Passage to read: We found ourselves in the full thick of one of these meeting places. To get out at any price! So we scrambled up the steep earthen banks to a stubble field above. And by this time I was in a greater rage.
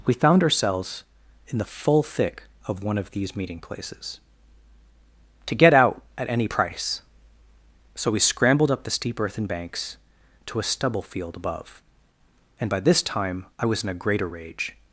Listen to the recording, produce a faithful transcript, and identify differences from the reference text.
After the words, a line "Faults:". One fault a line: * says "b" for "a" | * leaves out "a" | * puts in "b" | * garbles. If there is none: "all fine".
We found ourselves in the full thick of one of these meeting places. To get out at any price! So we scrambled up the steep earthen banks to a stubble field above. And by this time I was in a greater rage.
Faults:
all fine